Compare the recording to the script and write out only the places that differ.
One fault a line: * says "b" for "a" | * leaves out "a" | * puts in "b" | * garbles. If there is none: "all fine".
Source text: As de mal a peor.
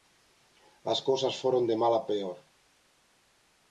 * puts in "cousas foron"